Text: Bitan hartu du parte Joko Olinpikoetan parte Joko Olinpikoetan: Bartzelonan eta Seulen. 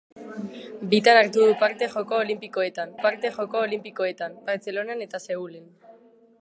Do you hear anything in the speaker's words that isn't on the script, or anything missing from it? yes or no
no